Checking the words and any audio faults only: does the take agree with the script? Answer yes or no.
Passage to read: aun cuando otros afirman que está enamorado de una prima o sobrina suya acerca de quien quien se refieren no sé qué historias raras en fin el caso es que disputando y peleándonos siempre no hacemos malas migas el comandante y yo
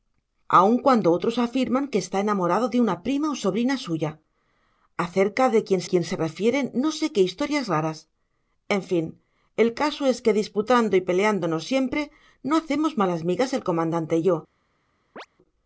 no